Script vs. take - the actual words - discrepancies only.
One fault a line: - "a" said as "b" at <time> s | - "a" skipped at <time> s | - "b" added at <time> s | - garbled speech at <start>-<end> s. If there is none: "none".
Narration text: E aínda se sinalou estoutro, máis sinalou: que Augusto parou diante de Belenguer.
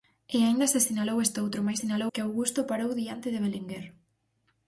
none